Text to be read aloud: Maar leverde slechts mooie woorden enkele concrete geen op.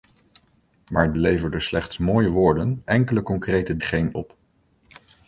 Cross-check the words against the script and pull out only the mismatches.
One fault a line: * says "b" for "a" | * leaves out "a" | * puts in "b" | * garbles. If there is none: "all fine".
all fine